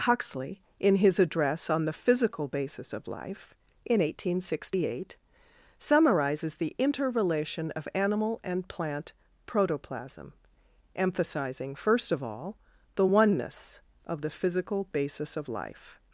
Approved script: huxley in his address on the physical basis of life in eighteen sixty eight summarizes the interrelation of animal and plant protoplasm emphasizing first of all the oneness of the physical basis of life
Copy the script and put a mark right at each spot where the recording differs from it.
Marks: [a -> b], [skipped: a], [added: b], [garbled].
huxley in his address on the physical basis of life in eighteen sixty eight summarizes the interrelation of animal and plant protoplasm emphasizing first of all the oneness of the physical basis of life